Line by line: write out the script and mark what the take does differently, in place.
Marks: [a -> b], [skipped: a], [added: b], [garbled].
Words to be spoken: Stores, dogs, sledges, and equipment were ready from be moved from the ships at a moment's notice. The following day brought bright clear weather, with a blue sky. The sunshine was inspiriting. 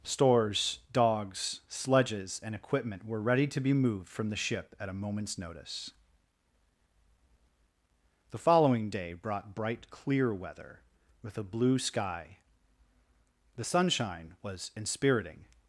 Stores, dogs, sledges, and equipment were ready [from -> to] be moved from the [ships -> ship] at a moment's notice. The following day brought bright clear weather, with a blue sky. The sunshine was inspiriting.